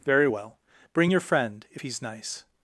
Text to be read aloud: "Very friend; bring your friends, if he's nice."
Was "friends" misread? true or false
true